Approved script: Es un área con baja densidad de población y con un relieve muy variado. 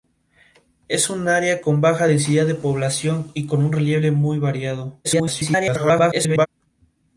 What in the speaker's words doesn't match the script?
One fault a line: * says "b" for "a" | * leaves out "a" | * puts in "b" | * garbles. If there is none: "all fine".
* garbles